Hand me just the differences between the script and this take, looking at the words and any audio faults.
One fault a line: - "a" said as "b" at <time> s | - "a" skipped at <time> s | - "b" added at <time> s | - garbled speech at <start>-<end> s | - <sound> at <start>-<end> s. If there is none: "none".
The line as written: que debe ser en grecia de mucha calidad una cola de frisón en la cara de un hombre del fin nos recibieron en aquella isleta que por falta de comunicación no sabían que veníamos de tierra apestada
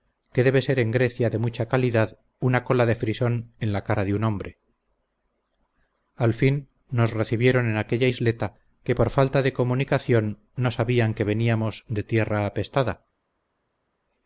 - "del" said as "al" at 6.2 s